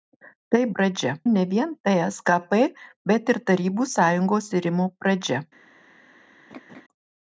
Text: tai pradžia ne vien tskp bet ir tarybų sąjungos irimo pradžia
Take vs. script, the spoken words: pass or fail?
pass